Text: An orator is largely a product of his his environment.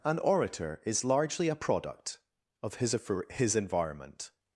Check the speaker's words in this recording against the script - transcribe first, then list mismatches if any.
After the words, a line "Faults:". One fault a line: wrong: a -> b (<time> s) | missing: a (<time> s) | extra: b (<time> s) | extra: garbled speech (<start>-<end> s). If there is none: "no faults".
An orator is largely a product of his his environment.
Faults:
no faults